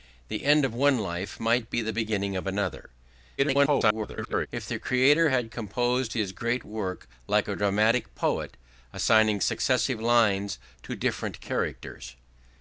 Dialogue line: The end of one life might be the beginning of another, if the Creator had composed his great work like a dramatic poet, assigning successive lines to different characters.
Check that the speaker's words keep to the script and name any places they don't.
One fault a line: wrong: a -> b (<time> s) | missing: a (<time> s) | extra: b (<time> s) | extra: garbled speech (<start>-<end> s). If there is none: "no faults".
extra: garbled speech (3.4-4.5 s)